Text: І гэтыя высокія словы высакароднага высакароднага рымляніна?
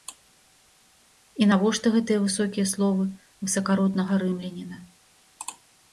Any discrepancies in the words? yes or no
yes